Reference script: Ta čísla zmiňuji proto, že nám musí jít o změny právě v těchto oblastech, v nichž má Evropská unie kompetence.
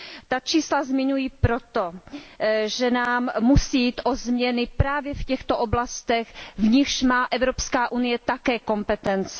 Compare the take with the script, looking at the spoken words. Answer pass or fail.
fail